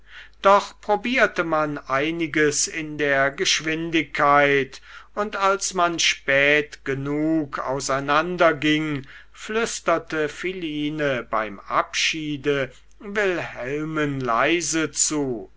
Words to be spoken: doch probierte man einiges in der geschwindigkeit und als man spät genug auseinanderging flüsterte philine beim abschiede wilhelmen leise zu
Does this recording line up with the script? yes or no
yes